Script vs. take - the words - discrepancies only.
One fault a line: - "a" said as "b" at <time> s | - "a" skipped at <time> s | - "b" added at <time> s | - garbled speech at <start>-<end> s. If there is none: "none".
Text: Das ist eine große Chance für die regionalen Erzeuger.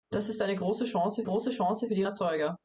- "große Chance" added at 1.2 s
- "regionalen" skipped at 2.0 s